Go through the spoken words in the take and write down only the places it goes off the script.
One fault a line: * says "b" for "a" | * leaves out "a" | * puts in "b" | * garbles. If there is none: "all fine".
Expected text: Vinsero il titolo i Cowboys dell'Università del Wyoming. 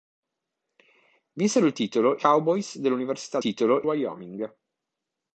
* leaves out "i"
* says "titolo" for "del"